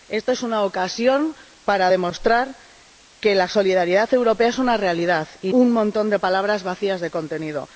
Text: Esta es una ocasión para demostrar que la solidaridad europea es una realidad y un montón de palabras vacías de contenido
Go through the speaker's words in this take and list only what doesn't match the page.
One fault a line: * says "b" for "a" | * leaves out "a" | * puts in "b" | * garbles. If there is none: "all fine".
all fine